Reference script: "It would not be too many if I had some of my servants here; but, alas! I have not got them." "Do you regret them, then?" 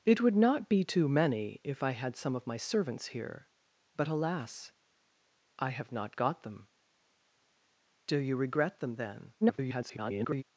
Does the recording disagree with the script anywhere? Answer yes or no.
yes